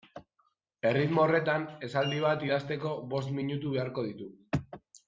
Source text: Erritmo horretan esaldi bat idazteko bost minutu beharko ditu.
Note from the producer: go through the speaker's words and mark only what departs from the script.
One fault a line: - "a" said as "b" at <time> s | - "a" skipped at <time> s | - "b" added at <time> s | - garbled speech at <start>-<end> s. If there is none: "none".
none